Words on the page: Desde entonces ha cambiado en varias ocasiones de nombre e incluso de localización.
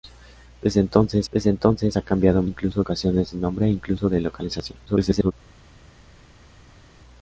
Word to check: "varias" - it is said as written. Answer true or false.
false